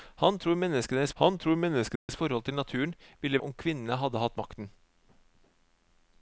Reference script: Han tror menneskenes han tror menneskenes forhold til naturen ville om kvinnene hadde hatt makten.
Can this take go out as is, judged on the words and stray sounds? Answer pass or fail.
fail